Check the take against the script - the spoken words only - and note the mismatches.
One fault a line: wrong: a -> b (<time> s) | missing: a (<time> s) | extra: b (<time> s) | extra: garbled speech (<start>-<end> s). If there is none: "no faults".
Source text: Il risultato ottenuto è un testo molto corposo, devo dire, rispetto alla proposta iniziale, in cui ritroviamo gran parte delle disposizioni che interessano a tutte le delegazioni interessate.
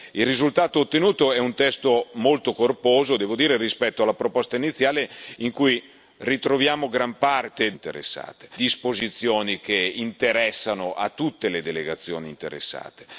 wrong: delle -> interessate (7.7 s)